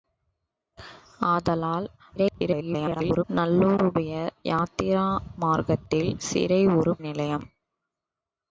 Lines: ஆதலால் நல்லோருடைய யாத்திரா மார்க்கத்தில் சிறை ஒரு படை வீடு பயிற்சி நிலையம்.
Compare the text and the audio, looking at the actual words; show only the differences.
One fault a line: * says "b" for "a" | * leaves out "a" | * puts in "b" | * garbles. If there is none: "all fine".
* garbles
* leaves out "படை வீடு பயிற்சி"